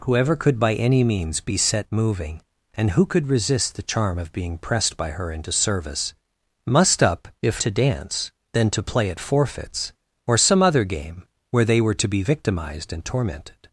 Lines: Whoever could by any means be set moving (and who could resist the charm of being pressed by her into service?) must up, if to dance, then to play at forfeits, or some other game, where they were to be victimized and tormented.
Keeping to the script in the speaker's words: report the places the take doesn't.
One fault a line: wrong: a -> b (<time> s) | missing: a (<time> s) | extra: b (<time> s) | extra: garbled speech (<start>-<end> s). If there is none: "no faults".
no faults